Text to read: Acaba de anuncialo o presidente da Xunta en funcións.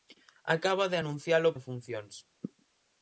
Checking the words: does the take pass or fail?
fail